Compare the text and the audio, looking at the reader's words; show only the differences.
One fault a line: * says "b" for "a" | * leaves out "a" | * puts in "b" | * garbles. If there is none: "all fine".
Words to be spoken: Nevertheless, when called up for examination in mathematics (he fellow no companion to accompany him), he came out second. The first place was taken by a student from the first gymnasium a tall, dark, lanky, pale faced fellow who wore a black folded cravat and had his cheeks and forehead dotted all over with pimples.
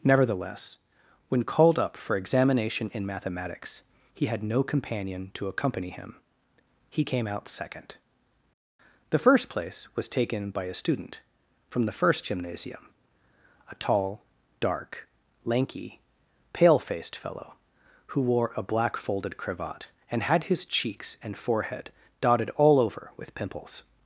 * says "had" for "fellow"